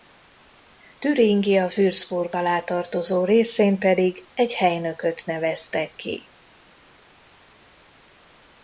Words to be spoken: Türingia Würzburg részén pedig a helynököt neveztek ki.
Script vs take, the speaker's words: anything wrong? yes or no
yes